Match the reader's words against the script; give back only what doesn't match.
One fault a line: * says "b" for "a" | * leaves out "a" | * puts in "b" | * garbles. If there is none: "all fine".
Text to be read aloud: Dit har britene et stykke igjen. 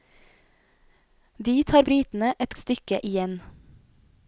all fine